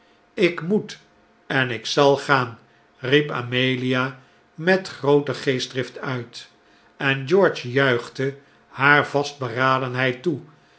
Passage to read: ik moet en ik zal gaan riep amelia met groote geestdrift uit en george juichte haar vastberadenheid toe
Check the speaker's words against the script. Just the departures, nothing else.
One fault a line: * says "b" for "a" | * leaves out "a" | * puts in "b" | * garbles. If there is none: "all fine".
all fine